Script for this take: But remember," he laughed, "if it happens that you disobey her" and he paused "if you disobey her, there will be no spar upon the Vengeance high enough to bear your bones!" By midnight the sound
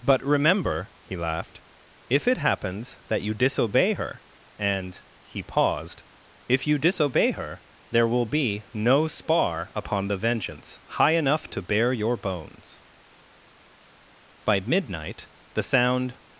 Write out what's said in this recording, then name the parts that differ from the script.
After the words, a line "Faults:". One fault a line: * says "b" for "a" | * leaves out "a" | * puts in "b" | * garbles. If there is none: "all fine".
But remember," he laughed, "if it happens that you disobey her" and he paused "if you disobey her, there will be no spar upon the Vengeance high enough to bear your bones!" By midnight the sound
Faults:
all fine